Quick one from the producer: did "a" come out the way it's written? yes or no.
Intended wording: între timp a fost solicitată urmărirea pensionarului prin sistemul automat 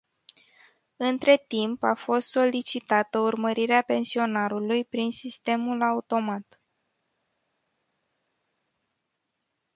yes